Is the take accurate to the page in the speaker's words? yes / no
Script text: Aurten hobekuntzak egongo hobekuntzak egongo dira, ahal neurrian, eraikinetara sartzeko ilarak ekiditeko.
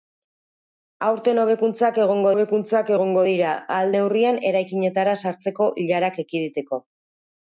yes